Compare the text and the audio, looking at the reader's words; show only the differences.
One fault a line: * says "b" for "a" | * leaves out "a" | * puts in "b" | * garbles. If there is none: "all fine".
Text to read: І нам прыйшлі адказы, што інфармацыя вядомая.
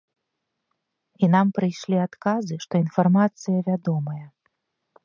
all fine